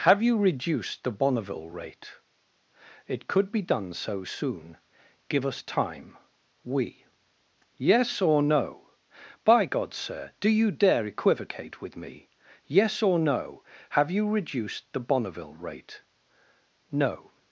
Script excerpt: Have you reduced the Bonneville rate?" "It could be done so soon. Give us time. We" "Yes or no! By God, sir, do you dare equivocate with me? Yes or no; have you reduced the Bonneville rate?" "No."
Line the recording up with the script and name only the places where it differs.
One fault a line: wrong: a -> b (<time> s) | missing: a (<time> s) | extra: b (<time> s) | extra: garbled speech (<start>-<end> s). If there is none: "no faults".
no faults